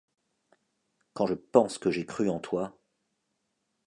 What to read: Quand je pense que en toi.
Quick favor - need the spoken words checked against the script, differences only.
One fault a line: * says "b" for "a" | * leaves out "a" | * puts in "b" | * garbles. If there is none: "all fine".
* puts in "j'ai cru"